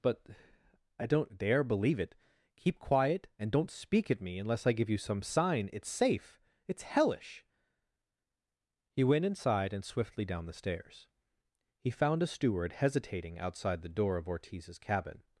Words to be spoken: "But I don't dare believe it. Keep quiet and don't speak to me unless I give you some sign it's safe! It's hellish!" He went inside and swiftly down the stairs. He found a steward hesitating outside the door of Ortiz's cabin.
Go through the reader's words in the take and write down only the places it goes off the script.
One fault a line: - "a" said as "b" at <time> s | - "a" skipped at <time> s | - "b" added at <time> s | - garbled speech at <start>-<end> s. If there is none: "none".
- "to" said as "at" at 4.1 s